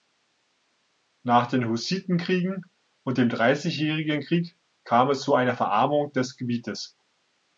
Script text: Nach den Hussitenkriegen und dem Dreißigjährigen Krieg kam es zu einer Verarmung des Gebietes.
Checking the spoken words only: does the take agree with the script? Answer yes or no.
yes